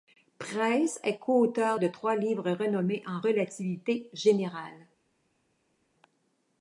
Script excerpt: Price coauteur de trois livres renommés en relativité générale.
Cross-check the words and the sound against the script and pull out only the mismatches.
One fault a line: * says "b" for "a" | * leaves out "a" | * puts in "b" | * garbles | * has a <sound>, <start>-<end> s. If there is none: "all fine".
* puts in "est"